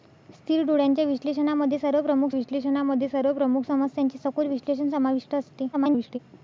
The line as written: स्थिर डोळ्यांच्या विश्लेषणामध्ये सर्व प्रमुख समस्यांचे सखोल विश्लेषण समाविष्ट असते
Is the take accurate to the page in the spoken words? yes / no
no